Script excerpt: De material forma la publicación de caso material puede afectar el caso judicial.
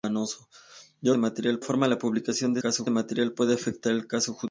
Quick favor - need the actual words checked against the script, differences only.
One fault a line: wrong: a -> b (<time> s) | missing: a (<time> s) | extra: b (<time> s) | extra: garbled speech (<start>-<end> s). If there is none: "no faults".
no faults